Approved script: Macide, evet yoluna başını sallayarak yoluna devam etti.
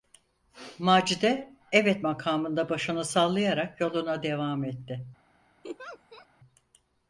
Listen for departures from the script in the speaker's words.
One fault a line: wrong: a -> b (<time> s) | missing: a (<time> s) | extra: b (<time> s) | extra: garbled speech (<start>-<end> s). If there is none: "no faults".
wrong: yoluna -> makamında (2.0 s)